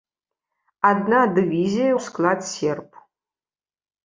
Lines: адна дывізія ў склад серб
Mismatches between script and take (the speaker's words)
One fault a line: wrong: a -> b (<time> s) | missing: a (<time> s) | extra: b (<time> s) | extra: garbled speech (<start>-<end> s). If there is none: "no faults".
no faults